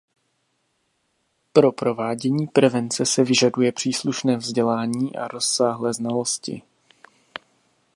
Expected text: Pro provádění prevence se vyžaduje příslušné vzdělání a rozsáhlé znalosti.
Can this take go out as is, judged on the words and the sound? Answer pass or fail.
pass